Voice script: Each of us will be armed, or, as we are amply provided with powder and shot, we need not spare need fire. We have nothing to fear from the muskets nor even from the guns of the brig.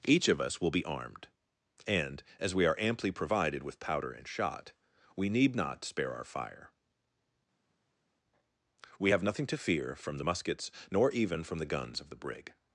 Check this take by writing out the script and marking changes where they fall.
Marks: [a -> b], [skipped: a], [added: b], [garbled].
Each of us will be armed, [or, -> and] as we are amply provided with powder and shot, we need not spare [need -> our] fire. We have nothing to fear from the muskets nor even from the guns of the brig.